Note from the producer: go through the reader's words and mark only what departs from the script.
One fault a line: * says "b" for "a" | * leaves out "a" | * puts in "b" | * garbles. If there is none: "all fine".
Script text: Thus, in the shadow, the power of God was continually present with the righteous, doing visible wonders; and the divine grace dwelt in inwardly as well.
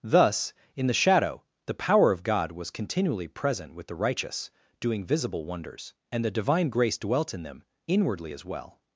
* puts in "them"